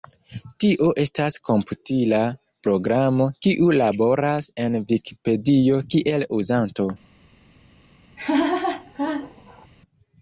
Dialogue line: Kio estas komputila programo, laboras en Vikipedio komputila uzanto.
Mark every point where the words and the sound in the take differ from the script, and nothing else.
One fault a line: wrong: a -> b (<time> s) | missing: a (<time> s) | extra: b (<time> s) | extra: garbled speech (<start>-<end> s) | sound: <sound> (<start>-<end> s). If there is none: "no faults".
wrong: Kio -> Tio (0.6 s)
extra: kiu (3.5 s)
wrong: komputila -> kiel (5.9 s)
sound: laugh (8.2-9.7 s)